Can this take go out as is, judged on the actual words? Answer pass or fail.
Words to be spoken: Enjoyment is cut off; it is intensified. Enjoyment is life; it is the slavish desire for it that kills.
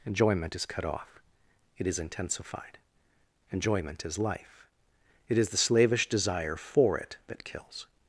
pass